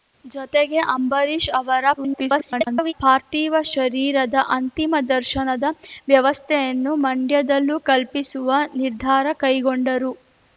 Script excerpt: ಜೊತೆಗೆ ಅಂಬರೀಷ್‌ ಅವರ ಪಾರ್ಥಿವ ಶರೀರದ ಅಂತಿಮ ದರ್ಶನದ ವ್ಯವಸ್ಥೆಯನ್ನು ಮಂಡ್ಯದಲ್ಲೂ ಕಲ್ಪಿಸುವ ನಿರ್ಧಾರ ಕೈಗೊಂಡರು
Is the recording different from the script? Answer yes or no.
yes